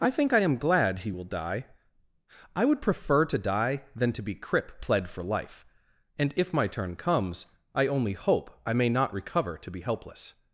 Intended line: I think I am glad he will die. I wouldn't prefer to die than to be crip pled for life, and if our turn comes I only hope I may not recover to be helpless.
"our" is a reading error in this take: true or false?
true